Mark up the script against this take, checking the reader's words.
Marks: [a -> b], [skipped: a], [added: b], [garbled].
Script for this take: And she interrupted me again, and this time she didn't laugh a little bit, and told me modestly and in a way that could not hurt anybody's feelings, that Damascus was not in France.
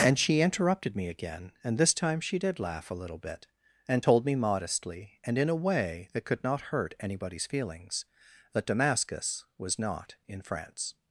And she interrupted me again, and this time she [didn't -> did] laugh a little bit, and told me modestly and in a way that could not hurt anybody's feelings, that Damascus was not in France.